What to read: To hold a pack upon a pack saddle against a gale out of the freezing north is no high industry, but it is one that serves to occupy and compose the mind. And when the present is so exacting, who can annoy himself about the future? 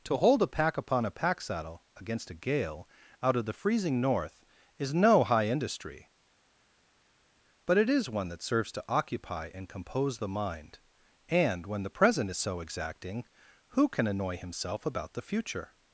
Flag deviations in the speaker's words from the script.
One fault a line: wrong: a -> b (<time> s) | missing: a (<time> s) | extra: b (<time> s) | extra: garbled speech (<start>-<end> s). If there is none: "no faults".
no faults